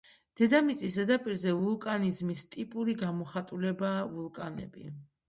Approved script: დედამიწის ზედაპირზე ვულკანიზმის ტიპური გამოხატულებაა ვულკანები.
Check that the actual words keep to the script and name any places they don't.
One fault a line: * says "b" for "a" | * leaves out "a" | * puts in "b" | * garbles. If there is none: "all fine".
all fine